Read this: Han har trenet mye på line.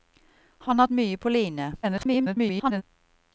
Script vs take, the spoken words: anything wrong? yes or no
yes